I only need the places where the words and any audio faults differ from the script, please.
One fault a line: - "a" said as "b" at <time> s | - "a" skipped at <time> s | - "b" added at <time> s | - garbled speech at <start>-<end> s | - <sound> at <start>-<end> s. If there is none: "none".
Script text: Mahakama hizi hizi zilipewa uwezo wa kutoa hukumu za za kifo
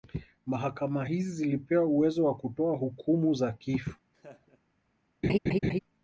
- "hizi" skipped at 1.3 s
- "za" skipped at 3.5 s
- laugh at 4.1-4.6 s
- laugh at 5.2-5.8 s